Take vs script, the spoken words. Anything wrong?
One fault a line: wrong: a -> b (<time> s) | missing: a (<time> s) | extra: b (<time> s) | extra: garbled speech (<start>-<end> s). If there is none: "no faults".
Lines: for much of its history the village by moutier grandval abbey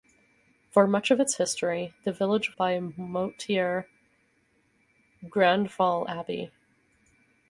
no faults